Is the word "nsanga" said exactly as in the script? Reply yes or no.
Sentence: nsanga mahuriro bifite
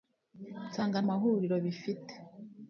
yes